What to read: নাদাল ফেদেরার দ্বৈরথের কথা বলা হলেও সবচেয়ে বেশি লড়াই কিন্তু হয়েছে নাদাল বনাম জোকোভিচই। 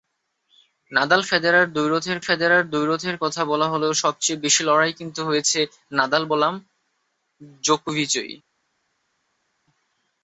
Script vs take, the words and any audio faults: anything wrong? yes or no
yes